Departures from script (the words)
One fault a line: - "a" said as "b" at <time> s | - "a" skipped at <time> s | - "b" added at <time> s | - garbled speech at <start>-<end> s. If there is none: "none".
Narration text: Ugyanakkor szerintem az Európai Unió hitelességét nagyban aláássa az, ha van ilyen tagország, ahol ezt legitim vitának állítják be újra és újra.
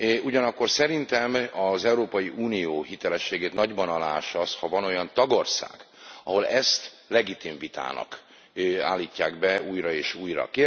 - "ilyen" said as "olyan" at 4.8 s